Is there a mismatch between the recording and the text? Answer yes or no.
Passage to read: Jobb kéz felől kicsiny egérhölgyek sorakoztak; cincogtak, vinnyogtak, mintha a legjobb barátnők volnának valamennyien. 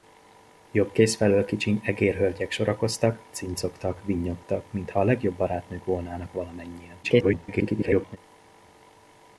yes